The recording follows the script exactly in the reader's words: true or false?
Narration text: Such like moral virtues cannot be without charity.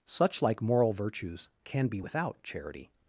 false